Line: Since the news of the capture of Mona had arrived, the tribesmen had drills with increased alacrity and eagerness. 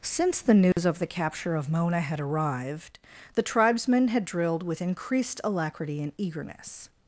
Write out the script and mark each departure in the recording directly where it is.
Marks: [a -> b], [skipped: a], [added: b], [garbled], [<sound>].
Since the news [dropout] of the capture of Mona had arrived, the tribesmen had [drills -> drilled] with increased alacrity and eagerness.